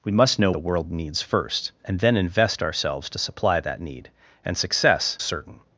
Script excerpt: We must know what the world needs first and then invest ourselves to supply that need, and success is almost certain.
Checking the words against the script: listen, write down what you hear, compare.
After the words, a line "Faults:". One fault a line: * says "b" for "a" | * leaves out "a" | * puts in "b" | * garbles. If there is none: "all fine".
We must know the world needs first and then invest ourselves to supply that need, and success certain.
Faults:
* leaves out "what"
* leaves out "is almost"